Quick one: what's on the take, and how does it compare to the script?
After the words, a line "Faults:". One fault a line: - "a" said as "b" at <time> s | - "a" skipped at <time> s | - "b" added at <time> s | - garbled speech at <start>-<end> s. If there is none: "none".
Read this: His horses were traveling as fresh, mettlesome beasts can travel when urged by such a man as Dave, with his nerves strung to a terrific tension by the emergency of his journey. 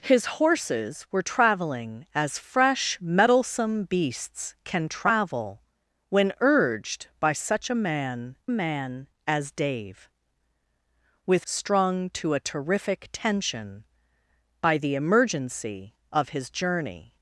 His horses were traveling as fresh, mettlesome beasts can travel when urged by such a man man as Dave, with strung to a terrific tension by the emergency of his journey.
Faults:
- "man" added at 8.5 s
- "his nerves" skipped at 11.5 s